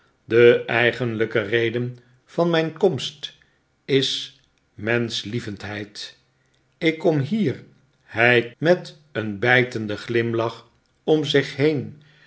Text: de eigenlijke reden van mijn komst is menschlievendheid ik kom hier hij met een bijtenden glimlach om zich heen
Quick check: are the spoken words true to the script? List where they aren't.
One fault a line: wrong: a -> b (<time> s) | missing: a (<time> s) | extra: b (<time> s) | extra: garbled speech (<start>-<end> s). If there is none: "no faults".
no faults